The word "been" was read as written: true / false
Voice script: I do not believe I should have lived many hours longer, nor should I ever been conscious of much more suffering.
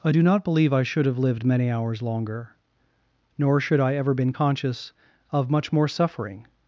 true